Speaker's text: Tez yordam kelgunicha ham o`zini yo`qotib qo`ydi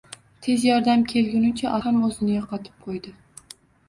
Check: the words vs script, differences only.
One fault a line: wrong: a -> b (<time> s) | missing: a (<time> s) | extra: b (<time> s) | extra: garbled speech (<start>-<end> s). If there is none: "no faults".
no faults